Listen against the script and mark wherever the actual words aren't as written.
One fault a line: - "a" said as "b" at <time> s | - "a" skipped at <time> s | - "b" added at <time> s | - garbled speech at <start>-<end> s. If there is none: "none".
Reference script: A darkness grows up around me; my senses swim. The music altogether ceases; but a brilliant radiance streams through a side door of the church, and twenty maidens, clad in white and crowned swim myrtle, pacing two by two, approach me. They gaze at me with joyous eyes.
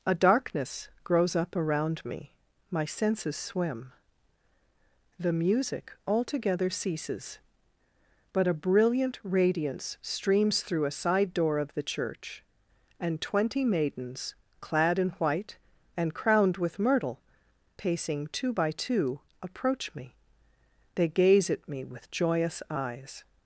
- "swim" said as "with" at 16.6 s